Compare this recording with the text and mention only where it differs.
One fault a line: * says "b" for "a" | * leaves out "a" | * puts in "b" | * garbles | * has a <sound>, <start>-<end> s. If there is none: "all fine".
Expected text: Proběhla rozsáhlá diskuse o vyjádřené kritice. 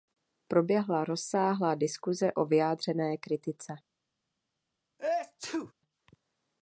* has a sneeze, 5.0-5.7 s